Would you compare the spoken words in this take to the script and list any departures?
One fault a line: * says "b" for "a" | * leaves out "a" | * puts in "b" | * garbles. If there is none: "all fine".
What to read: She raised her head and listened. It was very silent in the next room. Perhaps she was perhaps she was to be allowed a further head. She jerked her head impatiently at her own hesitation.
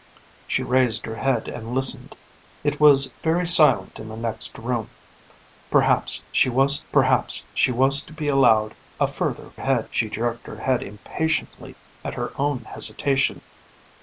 all fine